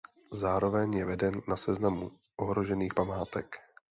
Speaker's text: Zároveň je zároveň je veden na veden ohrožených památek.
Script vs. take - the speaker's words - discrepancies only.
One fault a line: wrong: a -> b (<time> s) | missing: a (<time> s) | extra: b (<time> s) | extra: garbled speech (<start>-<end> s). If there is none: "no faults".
missing: zároveň je (1.1 s)
wrong: veden -> seznamu (1.6 s)